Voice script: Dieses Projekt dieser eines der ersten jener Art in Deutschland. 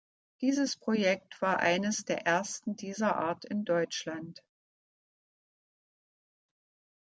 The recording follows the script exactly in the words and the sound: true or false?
false